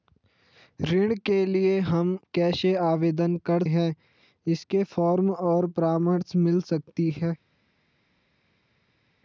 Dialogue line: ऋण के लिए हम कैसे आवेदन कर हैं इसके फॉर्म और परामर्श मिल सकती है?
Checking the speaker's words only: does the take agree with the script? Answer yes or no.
yes